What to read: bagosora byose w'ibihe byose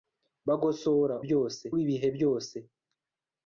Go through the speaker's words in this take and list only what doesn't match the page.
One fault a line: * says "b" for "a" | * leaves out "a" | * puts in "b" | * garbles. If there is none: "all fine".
all fine